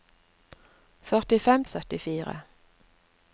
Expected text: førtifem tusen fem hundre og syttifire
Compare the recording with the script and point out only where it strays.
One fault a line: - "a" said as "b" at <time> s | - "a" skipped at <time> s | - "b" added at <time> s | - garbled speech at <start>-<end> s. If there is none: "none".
- "tusen fem hundre" skipped at 1.6 s